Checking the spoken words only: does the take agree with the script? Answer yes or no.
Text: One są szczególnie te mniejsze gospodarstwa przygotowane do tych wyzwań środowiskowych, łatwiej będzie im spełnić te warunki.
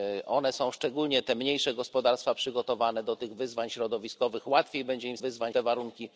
no